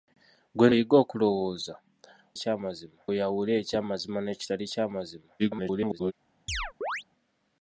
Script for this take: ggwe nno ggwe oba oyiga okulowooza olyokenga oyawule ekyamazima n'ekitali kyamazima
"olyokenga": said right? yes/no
no